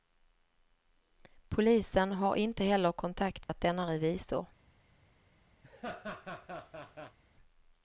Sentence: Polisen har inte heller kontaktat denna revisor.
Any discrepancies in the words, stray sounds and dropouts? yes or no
yes